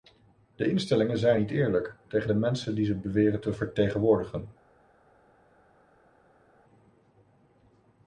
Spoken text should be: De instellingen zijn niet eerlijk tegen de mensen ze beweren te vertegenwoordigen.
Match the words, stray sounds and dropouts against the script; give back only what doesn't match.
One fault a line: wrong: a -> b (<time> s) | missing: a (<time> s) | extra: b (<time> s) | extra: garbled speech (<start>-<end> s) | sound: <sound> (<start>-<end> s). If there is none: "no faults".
extra: die (2.8 s)